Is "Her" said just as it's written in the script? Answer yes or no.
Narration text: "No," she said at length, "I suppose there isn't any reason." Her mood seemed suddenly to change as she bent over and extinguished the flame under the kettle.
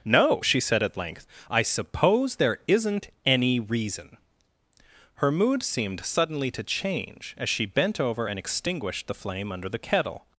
yes